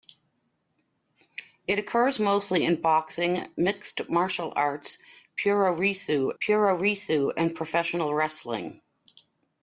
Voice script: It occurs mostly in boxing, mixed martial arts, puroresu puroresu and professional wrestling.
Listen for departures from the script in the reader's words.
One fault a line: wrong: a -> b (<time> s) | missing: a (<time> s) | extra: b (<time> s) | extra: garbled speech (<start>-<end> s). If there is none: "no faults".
no faults